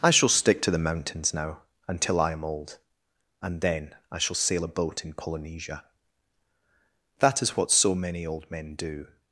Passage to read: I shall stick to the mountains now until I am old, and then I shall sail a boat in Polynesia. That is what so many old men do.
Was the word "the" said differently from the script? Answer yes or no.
no